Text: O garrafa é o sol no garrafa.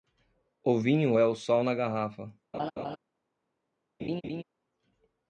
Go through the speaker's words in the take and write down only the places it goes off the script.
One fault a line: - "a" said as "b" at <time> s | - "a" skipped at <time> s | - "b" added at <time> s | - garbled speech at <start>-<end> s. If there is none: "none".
- "garrafa" said as "vinho" at 0.8 s
- "no" said as "na" at 1.6 s